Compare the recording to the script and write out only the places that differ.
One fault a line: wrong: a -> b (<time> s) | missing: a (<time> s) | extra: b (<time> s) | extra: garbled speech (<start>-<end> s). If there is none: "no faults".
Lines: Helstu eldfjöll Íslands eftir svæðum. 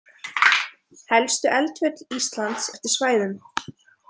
no faults